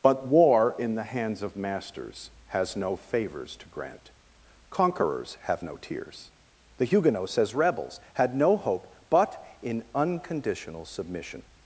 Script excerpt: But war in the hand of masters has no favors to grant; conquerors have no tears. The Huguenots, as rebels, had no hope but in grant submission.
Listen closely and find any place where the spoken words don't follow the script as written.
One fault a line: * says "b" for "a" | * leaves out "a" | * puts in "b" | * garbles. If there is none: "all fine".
* says "hands" for "hand"
* says "unconditional" for "grant"